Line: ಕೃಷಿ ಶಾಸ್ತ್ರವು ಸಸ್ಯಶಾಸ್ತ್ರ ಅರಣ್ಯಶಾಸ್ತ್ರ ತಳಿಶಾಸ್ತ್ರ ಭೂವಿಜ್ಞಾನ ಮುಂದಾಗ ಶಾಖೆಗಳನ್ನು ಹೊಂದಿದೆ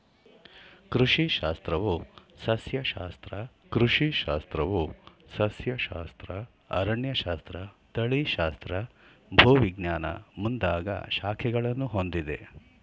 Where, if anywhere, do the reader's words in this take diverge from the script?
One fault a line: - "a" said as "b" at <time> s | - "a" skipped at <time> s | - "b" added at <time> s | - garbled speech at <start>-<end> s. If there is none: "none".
- "ಕೃಷಿ ಶಾಸ್ತ್ರವು ಸಸ್ಯಶಾಸ್ತ್ರ" added at 3.7 s